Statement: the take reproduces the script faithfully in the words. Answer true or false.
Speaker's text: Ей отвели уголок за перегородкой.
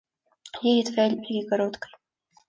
false